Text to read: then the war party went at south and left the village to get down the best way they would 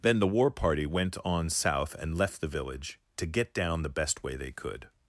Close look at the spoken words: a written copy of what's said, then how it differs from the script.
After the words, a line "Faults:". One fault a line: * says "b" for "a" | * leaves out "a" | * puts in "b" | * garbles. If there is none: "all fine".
then the war party went on south and left the village to get down the best way they could
Faults:
* says "on" for "at"
* says "could" for "would"